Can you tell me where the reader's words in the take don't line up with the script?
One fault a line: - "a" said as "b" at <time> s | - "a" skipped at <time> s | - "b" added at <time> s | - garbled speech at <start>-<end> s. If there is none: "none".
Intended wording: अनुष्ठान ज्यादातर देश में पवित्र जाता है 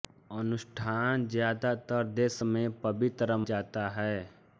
none